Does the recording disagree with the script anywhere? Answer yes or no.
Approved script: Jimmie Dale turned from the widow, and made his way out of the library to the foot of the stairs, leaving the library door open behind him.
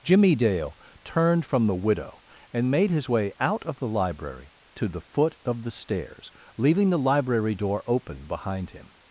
no